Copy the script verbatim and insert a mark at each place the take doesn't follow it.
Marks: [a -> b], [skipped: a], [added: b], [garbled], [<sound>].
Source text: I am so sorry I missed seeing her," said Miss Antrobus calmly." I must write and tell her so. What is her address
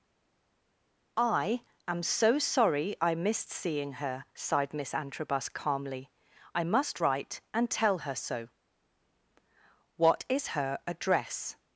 I am so sorry I missed seeing her," [said -> sighed] Miss Antrobus calmly." I must write and tell her so. What is her address